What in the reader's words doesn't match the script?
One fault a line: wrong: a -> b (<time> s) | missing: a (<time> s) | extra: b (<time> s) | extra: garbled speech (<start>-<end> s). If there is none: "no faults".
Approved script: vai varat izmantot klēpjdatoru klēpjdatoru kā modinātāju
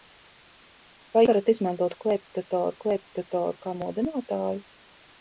no faults